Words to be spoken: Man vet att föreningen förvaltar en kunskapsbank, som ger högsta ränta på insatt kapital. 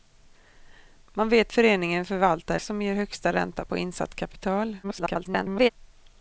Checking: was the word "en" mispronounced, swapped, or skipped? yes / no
yes